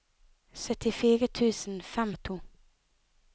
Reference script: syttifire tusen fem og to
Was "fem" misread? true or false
false